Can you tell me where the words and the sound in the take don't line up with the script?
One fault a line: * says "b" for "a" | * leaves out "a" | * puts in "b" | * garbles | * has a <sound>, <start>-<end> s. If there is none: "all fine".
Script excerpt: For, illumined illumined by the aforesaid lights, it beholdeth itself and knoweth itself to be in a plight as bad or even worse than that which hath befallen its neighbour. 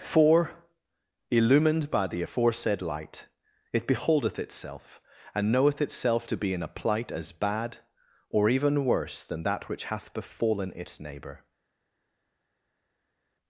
* leaves out "illumined"
* says "light" for "lights"